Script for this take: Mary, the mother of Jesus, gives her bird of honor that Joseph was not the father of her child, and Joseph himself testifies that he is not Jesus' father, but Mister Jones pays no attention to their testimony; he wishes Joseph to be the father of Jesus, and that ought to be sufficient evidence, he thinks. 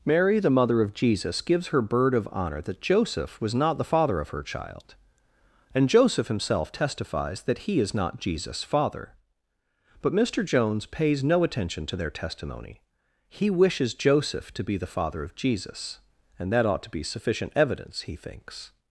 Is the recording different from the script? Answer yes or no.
no